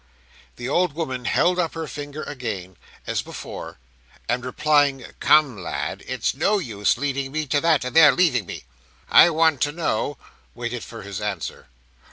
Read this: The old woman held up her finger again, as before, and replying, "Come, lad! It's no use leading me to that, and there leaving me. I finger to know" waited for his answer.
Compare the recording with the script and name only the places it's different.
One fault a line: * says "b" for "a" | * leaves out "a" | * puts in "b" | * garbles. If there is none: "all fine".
* says "want" for "finger"